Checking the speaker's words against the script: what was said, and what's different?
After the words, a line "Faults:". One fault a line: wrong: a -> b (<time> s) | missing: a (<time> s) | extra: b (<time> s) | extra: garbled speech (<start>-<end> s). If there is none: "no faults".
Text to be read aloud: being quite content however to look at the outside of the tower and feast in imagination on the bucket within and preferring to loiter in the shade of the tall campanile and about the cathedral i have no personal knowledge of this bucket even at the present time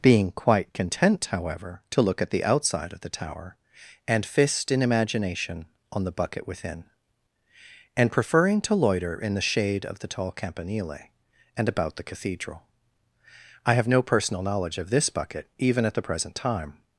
being quite content however to look at the outside of the tower and fist in imagination on the bucket within and preferring to loiter in the shade of the tall campanile and about the cathedral i have no personal knowledge of this bucket even at the present time
Faults:
wrong: feast -> fist (4.2 s)